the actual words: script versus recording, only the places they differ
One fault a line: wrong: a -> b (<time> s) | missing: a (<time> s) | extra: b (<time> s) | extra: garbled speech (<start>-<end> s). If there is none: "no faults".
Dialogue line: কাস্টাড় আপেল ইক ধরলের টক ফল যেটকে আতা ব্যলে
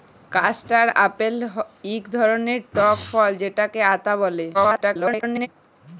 extra: garbled speech (4.5-5.5 s)